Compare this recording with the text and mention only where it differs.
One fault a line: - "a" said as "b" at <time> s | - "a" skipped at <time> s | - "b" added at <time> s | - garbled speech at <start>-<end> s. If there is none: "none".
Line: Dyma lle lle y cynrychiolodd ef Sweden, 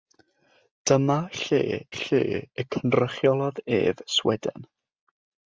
none